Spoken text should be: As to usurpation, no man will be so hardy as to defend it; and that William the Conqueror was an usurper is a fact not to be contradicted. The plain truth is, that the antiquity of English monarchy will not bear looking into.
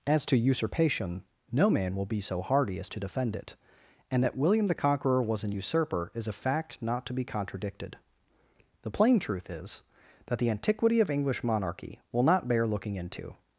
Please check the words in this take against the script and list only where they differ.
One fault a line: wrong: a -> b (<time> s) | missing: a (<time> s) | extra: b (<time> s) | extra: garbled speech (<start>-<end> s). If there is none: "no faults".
no faults